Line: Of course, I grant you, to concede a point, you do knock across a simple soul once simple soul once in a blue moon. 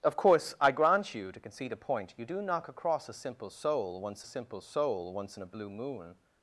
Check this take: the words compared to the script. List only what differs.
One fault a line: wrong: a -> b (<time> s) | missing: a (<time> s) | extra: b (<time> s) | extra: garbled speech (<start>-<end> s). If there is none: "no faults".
no faults